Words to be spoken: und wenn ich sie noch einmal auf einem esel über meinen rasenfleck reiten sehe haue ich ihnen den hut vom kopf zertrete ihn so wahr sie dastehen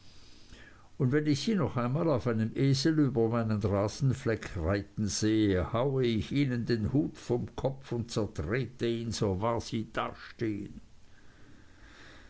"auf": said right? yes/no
yes